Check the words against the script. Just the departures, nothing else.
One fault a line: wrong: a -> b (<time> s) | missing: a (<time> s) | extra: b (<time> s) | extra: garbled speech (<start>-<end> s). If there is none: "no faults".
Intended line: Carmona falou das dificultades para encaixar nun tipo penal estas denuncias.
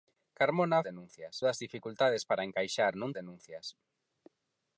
wrong: falou -> denuncias (0.9 s)
missing: tipo penal estas (3.1 s)